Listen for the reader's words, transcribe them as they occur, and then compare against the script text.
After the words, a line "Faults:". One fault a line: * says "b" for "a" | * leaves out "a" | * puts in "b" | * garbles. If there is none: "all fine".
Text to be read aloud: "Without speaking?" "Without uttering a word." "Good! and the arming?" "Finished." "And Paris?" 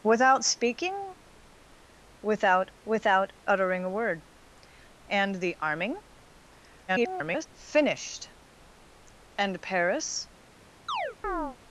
"Without speaking?" "Without without uttering a word! "And the arming?" [garbled] "Finished." "And Paris?"
Faults:
* puts in "without"
* leaves out "Good"
* garbles